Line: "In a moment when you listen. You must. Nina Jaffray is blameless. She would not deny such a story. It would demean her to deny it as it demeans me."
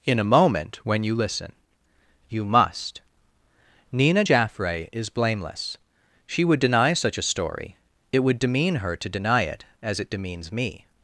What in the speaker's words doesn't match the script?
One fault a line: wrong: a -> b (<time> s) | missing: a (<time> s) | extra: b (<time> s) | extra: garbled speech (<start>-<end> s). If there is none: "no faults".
missing: not (6.6 s)